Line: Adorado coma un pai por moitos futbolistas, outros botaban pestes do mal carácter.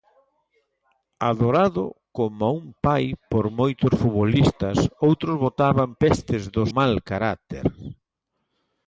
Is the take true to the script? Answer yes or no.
yes